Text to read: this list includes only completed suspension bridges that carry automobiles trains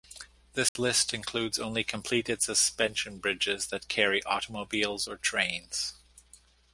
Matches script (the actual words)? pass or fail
fail